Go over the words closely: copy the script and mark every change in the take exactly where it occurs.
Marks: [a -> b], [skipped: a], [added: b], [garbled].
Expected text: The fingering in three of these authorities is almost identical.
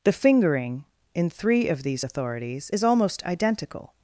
The fingering in three of these authorities is almost identical.